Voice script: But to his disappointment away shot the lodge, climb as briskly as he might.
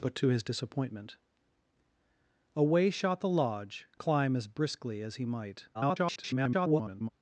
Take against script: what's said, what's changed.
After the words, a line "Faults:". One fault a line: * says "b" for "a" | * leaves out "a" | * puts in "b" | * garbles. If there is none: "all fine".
But to his disappointment away shot the lodge, climb as briskly as he might. [garbled]
Faults:
* garbles